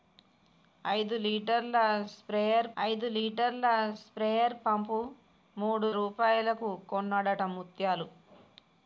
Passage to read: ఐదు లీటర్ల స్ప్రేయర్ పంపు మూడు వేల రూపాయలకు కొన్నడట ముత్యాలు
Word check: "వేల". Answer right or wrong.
wrong